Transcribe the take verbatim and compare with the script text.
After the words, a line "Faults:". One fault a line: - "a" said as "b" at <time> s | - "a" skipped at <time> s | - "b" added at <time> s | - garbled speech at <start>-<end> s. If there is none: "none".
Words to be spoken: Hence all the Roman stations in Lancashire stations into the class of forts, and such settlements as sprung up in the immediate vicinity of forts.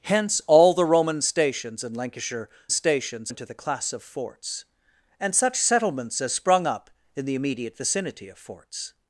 Hence all the Roman stations in Lancashire stations into the class of forts, and such settlements as sprung up in the immediate vicinity of forts.
Faults:
none